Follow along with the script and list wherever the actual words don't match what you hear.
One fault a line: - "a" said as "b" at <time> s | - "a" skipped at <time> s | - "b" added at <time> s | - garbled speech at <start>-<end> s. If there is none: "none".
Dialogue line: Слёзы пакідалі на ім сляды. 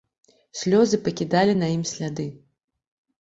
none